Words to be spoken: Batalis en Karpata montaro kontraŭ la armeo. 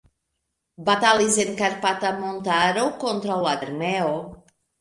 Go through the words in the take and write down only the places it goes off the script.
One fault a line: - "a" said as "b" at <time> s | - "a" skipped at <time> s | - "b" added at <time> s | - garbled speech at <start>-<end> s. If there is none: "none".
none